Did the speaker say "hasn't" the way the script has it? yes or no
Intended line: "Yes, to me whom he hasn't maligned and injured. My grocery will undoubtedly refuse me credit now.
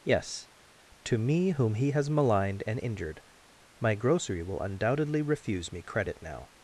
no